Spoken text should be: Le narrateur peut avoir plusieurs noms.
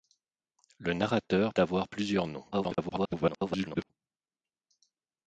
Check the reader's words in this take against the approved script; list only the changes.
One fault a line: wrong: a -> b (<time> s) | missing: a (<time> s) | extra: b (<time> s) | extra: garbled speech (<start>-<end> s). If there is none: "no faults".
missing: peut (1.5 s)
extra: garbled speech (2.5-3.9 s)